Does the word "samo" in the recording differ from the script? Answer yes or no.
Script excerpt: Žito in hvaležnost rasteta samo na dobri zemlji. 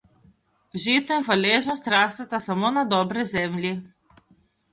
no